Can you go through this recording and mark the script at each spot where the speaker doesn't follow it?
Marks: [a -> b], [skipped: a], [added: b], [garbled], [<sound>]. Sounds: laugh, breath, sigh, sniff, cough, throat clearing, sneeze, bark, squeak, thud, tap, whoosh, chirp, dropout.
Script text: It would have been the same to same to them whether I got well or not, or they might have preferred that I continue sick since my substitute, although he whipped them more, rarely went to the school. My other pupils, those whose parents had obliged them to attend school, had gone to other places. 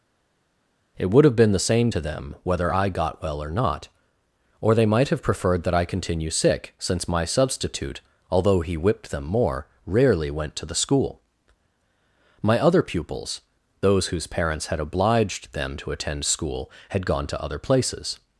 It would have been the same to [skipped: same to] them whether I got well or not, or they might have preferred that I continue sick since my substitute, although he whipped them more, rarely went to the school. My other pupils, those whose parents had obliged them to attend school, had gone to other places.